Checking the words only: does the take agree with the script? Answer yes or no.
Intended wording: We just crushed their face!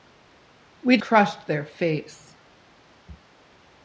no